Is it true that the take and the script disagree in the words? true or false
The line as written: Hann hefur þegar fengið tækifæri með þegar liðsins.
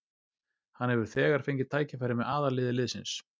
true